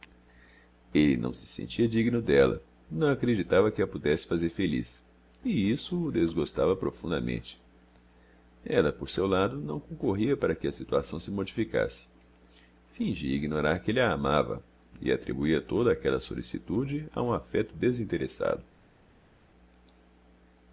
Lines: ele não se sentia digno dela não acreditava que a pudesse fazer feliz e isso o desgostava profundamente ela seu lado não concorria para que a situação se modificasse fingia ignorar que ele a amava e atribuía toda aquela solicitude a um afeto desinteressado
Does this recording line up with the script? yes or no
no